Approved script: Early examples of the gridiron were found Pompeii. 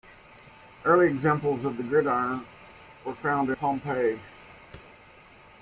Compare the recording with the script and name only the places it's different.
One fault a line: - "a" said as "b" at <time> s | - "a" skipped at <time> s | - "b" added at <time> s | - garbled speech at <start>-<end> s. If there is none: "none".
none